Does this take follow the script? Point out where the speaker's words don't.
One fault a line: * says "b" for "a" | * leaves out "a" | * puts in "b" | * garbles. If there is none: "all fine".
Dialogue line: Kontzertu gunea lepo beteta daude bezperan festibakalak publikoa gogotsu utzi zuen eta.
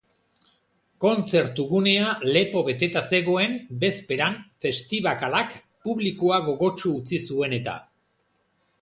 * says "zegoen" for "daude"